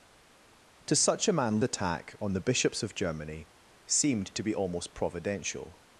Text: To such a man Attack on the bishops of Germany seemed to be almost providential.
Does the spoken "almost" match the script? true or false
true